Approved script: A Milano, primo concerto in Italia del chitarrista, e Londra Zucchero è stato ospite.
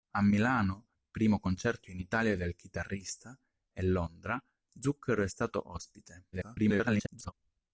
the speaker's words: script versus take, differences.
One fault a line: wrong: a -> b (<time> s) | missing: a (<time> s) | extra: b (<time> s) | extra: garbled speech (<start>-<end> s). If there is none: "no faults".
extra: garbled speech (6.3-7.3 s)